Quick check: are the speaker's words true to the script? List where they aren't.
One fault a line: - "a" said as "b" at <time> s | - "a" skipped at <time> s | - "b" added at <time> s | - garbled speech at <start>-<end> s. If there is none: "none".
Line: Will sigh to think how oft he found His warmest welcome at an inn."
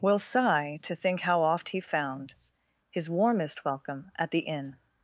- "an" said as "the" at 4.3 s